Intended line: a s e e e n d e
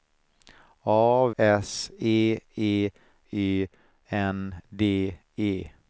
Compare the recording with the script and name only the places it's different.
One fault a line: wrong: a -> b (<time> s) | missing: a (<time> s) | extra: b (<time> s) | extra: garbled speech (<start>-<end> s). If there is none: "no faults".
no faults